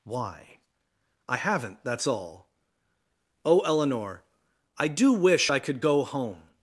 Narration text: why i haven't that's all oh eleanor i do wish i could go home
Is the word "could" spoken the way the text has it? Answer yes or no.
yes